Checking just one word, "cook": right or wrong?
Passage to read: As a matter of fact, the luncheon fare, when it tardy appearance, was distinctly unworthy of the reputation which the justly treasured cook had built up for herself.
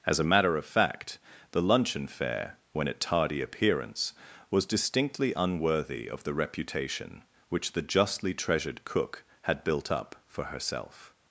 right